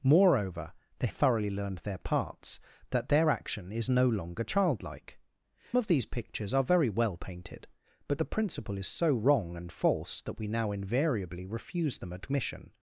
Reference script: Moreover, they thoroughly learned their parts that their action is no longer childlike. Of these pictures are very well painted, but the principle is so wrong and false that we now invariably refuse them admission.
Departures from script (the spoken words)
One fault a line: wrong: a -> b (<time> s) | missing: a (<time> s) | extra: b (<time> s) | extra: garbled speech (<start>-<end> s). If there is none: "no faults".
no faults